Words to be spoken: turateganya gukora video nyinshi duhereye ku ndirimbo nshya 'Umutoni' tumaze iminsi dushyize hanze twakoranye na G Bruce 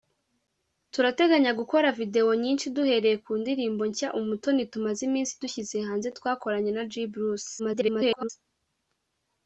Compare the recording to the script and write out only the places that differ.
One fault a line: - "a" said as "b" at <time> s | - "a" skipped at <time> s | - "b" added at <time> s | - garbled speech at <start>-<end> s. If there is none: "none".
- garbled speech at 7.6-8.3 s